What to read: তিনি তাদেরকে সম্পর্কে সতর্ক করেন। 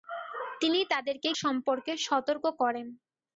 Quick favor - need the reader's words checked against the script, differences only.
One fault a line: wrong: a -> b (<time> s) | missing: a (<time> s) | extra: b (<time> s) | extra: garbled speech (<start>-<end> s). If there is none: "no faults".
no faults